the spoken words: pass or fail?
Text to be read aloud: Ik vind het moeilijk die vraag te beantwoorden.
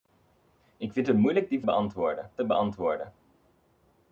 fail